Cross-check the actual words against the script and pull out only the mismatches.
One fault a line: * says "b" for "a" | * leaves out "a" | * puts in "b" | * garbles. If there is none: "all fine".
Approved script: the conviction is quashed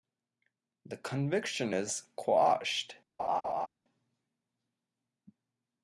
all fine